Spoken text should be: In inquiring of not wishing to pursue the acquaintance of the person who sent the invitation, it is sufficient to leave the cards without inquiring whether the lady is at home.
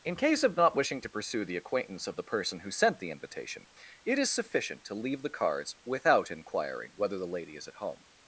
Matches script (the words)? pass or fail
fail